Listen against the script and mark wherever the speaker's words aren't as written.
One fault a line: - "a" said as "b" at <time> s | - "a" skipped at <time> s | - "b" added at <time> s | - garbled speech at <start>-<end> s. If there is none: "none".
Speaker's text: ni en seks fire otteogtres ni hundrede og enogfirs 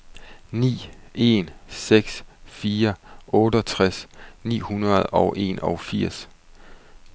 none